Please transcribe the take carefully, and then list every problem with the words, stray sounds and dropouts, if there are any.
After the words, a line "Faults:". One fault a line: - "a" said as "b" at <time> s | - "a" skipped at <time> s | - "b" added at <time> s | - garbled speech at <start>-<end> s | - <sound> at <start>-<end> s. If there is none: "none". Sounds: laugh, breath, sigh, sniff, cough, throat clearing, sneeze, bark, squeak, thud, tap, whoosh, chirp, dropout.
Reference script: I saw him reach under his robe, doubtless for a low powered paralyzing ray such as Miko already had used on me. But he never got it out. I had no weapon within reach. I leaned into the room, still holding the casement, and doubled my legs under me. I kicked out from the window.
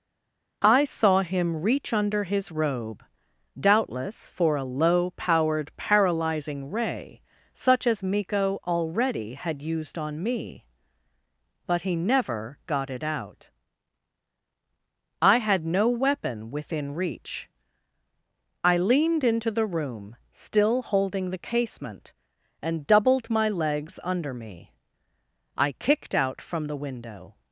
I saw him reach under his robe, doubtless for a low powered paralyzing ray such as Miko already had used on me. But he never got it out. I had no weapon within reach. I leaned into the room, still holding the casement, and doubled my legs under me. I kicked out from the window.
Faults:
none